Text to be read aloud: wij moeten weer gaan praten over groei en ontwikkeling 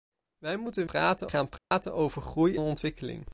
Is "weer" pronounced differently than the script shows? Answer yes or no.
yes